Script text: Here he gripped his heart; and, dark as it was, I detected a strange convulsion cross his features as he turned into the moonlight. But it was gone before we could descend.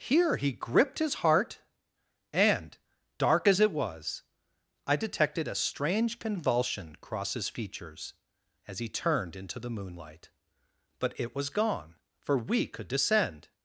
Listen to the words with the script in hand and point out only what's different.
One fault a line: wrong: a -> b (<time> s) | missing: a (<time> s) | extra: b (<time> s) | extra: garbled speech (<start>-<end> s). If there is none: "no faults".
wrong: before -> for (12.2 s)